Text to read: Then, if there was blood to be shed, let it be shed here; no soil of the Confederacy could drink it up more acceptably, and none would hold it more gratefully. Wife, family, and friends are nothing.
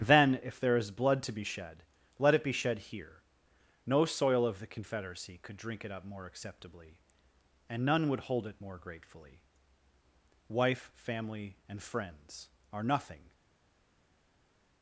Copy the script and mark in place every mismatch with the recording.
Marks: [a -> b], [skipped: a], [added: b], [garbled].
Then, if there [was -> is] blood to be shed, let it be shed here; no soil of the Confederacy could drink it up more acceptably, and none would hold it more gratefully. Wife, family, and friends are nothing.